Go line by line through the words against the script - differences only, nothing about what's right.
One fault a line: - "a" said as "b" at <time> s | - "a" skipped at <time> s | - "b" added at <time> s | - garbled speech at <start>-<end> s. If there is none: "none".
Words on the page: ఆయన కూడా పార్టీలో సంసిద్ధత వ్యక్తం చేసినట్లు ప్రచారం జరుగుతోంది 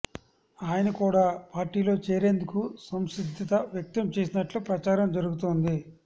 - "చేరేందుకు" added at 2.0 s